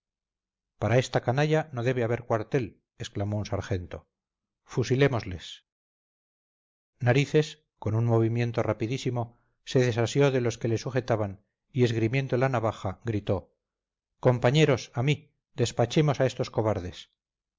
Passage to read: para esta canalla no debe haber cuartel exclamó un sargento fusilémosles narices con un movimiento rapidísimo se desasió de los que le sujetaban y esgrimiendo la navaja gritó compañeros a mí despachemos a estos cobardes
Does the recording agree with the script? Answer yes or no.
yes